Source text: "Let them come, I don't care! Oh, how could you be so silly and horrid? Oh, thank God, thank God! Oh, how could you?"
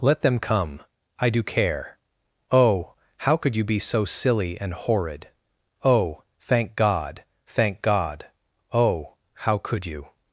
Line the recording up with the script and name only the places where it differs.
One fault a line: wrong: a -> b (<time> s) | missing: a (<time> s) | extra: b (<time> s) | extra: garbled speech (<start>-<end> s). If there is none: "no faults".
wrong: don't -> do (1.3 s)